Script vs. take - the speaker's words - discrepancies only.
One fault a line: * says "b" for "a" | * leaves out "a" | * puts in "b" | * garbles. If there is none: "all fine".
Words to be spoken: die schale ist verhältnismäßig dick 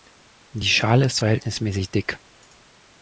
all fine